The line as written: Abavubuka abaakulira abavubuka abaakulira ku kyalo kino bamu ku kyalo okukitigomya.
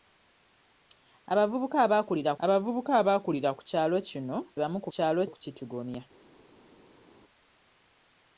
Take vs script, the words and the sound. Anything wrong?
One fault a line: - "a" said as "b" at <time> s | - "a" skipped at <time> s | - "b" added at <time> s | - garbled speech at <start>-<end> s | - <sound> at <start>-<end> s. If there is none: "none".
none